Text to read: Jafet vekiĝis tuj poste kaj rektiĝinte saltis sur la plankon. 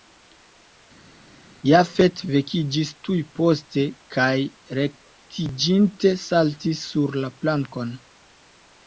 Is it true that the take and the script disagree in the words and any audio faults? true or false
false